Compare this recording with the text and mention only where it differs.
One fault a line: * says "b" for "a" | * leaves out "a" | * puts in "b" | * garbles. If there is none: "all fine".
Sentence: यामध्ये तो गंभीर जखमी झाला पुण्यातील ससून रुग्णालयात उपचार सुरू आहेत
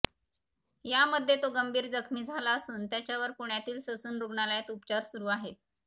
* puts in "असून त्याच्यावर"